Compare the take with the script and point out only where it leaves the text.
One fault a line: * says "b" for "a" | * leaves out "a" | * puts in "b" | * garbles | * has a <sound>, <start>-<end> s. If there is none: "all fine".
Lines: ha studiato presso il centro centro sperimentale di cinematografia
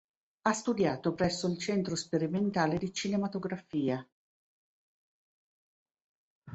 * leaves out "centro"